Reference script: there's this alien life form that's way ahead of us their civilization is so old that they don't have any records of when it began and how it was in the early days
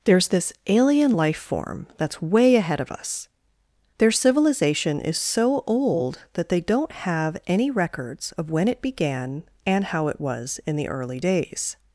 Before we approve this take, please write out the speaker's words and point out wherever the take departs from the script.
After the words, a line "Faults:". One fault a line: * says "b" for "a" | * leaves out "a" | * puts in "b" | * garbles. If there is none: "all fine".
there's this alien life form that's way ahead of us their civilization is so old that they don't have any records of when it began and how it was in the early days
Faults:
all fine